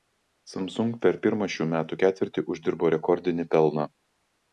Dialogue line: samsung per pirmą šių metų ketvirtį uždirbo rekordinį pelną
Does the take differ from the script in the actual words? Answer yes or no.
no